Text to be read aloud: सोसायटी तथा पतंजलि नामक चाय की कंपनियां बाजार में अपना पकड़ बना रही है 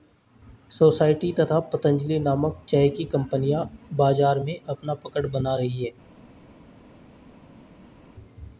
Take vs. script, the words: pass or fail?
pass